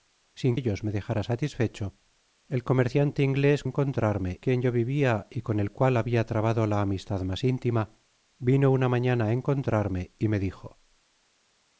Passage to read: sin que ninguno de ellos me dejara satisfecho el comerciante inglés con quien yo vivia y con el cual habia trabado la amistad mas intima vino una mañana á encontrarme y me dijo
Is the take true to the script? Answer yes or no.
no